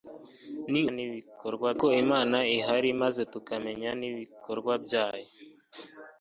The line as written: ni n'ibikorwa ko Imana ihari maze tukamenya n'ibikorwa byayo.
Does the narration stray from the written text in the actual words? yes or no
no